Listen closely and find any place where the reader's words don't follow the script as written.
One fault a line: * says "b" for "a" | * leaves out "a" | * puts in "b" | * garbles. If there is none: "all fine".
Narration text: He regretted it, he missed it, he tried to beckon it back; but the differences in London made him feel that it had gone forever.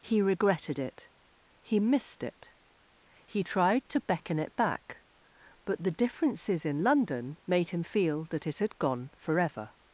all fine